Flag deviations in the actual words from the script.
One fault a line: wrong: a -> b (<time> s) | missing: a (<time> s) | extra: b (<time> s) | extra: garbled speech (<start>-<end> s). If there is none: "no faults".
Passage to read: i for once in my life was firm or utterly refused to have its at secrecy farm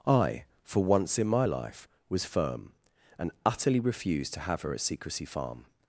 wrong: or -> and (3.2 s)
wrong: its -> her (4.6 s)